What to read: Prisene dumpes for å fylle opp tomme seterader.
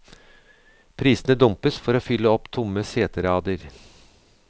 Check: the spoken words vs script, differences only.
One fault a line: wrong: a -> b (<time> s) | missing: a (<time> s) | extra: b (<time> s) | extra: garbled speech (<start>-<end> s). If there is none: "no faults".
no faults